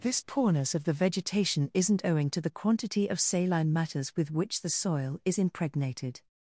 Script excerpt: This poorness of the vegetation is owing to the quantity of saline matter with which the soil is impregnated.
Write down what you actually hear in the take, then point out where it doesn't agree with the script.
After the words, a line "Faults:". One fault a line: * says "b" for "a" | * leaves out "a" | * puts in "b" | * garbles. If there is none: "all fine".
This poorness of the vegetation isn't owing to the quantity of saline matters with which the soil is impregnated.
Faults:
* says "isn't" for "is"
* says "matters" for "matter"